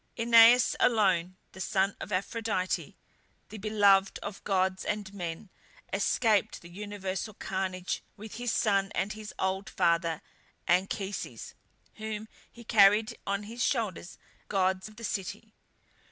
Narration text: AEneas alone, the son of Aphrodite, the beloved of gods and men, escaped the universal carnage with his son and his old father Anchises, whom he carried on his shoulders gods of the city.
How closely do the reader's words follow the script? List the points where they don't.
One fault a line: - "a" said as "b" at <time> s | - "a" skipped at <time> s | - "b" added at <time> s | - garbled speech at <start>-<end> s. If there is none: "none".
none